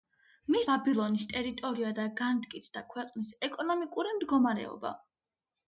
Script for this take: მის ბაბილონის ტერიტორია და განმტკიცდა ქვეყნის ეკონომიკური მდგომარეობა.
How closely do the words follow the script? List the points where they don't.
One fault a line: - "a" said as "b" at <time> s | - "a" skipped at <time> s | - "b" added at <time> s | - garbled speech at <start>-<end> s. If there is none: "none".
none